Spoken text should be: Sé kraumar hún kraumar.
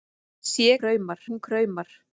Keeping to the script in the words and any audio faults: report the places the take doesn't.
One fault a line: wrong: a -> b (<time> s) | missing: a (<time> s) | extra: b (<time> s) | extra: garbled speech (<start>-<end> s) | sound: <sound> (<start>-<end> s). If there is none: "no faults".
no faults